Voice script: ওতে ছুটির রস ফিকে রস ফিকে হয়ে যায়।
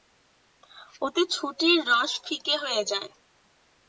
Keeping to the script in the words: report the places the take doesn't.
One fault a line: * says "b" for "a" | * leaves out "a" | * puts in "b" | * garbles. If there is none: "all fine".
* leaves out "রস ফিকে"